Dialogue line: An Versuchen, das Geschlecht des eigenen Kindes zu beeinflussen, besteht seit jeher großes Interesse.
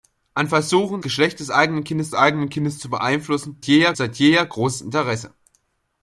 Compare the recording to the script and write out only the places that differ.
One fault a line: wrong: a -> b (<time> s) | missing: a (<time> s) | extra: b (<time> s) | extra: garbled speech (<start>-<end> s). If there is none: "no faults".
missing: das (1.0 s)
extra: eigenen Kindes (2.1 s)
wrong: besteht -> jeher (3.6 s)